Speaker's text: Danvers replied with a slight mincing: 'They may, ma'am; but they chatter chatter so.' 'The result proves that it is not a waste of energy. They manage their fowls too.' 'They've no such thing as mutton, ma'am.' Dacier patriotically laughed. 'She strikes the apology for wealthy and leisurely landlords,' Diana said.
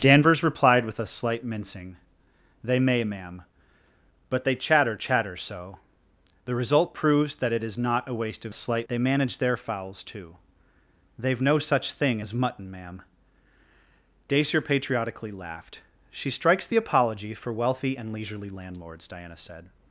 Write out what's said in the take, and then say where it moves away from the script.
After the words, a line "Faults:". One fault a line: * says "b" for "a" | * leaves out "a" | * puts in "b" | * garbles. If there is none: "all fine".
Danvers replied with a slight mincing: 'They may, ma'am; but they chatter chatter so.' 'The result proves that it is not a waste of slight. They manage their fowls too.' 'They've no such thing as mutton, ma'am.' Dacier patriotically laughed. 'She strikes the apology for wealthy and leisurely landlords,' Diana said.
Faults:
* says "slight" for "energy"